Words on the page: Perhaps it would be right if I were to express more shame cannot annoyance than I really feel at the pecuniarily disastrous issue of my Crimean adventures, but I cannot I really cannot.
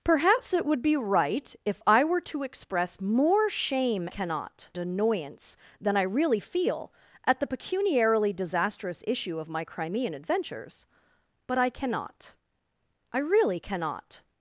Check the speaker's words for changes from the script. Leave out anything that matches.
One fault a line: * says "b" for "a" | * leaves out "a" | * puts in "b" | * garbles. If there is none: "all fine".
all fine